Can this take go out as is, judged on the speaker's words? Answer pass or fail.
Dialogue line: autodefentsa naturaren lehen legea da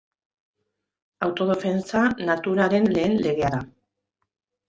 pass